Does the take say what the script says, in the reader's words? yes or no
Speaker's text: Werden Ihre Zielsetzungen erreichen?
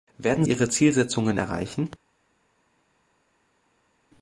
yes